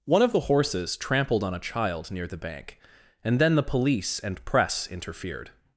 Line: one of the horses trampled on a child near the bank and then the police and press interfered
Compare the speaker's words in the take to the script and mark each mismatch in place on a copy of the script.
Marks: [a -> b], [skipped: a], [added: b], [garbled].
one of the horses trampled on a child near the bank and then the police and press interfered